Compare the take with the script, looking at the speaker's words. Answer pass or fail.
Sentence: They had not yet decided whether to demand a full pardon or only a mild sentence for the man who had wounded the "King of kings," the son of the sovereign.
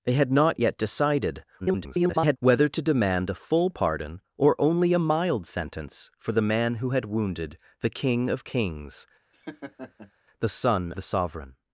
fail